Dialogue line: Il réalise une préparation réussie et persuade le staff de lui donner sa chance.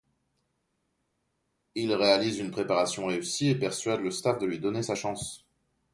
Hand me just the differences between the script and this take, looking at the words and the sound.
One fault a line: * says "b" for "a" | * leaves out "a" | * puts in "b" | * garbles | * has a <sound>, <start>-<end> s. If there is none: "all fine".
all fine